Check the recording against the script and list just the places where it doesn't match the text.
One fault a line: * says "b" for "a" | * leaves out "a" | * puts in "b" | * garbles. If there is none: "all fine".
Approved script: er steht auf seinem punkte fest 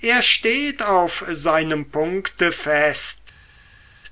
all fine